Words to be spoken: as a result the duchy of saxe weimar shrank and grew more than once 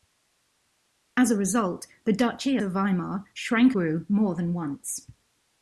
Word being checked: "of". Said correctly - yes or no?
no